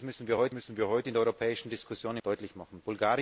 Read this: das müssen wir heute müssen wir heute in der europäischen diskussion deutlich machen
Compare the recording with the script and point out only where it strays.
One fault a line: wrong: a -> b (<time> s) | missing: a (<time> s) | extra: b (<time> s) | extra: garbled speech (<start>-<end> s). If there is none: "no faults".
no faults